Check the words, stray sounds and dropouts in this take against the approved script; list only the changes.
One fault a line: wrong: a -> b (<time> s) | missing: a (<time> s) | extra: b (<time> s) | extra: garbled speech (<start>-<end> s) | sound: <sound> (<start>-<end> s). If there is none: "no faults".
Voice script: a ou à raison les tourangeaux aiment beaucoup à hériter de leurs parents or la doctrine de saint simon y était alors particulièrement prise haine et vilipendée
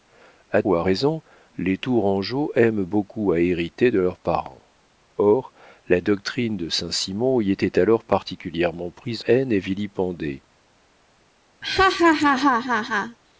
sound: laugh (11.6-13.2 s)